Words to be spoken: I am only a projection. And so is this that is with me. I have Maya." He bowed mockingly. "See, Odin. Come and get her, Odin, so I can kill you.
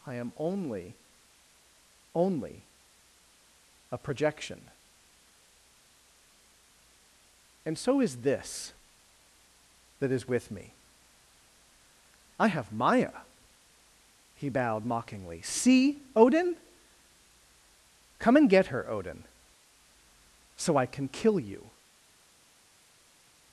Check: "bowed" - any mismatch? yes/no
no